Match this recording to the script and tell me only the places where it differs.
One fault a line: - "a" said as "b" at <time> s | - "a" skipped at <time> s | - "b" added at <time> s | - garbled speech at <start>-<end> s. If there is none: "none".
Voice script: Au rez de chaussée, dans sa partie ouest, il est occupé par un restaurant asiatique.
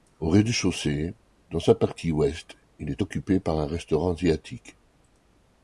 none